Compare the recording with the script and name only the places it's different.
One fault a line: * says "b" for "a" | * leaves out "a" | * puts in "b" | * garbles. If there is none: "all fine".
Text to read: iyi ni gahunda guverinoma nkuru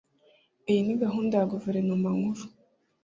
* puts in "ya"